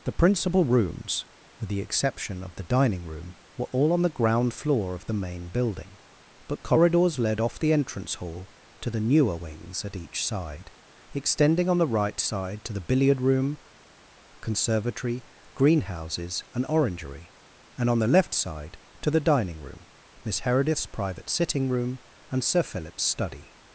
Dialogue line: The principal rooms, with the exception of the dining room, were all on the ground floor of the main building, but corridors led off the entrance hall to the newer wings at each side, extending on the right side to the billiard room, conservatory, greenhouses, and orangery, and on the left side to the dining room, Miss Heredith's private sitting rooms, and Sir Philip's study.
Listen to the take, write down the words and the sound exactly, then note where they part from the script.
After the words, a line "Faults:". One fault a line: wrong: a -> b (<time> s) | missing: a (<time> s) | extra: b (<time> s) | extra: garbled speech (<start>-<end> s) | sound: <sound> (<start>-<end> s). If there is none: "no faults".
The principal rooms, with the exception of the dining room, were all on the ground floor of the main building, but corridors led off the entrance hall to the newer wings at each side, extending on the right side to the billiard room, conservatory, greenhouses, and orangery, and on the left side to the dining room, Miss Heredith's private sitting room, and Sir Philip's study.
Faults:
wrong: rooms -> room (21.7 s)